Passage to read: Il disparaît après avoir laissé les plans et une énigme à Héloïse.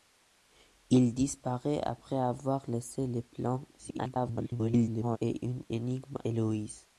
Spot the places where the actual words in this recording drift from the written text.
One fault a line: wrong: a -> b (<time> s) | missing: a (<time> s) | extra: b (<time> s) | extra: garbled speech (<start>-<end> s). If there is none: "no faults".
extra: garbled speech (3.8-5.2 s)
missing: à (6.2 s)